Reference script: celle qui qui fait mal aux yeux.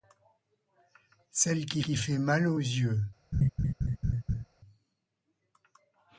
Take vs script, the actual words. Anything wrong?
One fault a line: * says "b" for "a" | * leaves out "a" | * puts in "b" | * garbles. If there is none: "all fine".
all fine